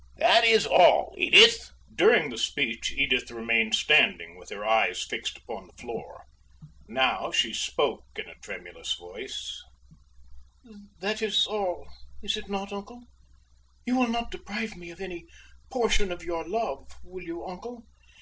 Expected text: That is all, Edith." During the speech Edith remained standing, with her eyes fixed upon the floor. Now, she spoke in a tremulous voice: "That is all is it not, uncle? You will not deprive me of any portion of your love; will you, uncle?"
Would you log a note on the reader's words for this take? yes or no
no